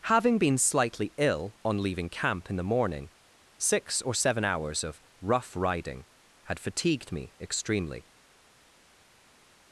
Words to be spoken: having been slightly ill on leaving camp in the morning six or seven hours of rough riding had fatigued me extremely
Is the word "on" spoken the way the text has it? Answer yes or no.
yes